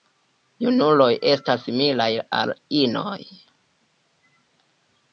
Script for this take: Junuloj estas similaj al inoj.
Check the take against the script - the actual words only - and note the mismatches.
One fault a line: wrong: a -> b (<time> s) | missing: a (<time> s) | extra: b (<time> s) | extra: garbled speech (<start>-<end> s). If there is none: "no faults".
no faults